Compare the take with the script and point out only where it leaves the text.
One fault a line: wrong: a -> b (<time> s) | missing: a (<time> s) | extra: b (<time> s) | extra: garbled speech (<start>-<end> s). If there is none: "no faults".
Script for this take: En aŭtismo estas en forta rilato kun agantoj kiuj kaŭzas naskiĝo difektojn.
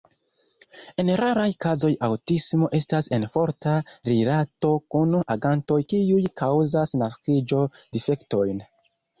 extra: raraj kazoj (1.2 s)